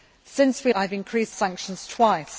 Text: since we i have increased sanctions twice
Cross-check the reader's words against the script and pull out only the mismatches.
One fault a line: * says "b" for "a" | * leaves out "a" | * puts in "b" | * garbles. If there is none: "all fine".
all fine